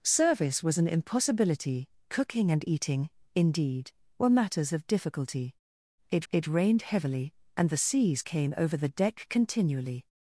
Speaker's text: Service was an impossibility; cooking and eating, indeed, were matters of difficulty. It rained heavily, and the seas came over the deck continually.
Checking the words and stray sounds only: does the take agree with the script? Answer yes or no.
no